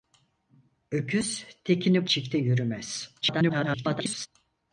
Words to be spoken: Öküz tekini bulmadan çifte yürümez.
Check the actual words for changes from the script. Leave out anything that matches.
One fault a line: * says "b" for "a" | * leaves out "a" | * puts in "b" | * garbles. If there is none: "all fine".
* leaves out "bulmadan"
* garbles